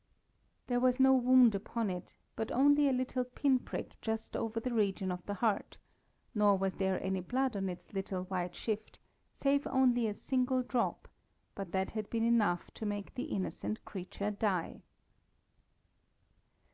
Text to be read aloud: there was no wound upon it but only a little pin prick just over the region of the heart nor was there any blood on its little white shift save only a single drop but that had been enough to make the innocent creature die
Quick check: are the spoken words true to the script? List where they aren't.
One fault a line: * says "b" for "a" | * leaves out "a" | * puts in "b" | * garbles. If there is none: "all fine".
all fine